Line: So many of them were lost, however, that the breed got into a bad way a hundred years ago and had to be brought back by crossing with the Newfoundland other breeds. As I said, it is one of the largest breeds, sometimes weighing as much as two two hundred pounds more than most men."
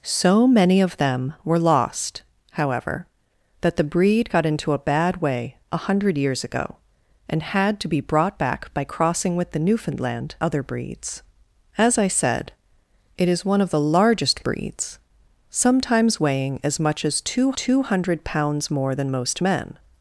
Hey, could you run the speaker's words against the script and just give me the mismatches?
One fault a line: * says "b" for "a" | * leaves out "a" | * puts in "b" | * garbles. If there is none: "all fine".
all fine